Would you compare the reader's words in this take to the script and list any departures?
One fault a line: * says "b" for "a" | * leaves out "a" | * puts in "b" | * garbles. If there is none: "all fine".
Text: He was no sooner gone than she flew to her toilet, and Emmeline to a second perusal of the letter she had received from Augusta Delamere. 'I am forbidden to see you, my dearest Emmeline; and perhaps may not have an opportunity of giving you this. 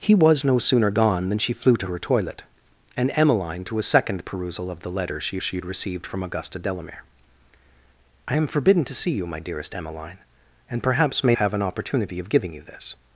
* puts in "she"
* leaves out "not"